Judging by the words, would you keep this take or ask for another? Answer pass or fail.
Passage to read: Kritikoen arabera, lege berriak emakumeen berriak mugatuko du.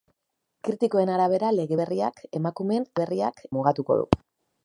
pass